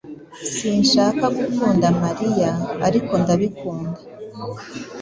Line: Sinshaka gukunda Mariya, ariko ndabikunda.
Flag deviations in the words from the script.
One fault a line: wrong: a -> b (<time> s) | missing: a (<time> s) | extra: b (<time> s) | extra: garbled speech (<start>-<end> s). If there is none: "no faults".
no faults